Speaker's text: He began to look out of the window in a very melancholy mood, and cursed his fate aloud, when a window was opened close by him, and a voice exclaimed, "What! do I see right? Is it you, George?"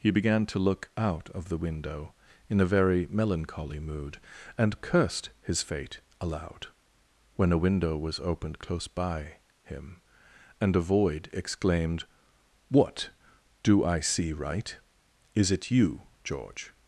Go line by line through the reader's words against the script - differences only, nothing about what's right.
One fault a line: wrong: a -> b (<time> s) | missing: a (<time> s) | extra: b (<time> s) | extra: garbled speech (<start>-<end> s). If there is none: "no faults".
wrong: voice -> void (10.8 s)